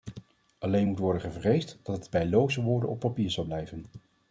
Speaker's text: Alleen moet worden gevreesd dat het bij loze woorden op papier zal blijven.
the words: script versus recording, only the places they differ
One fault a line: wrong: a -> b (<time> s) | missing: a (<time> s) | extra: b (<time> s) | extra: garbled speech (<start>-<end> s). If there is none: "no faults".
no faults